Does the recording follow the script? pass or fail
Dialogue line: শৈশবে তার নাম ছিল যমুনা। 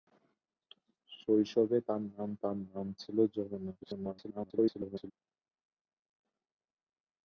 fail